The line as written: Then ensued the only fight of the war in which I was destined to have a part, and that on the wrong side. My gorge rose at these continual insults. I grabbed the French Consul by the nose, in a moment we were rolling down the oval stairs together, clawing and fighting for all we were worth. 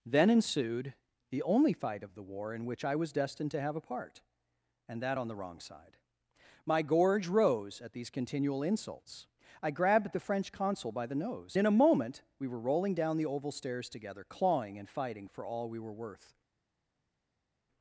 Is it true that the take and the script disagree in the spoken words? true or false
false